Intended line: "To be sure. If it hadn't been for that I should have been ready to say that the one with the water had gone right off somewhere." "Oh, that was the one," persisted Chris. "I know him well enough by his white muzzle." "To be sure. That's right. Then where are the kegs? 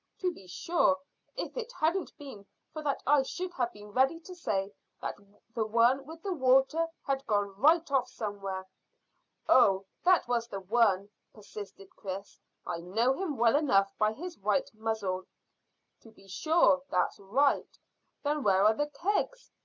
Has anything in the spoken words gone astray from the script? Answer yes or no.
no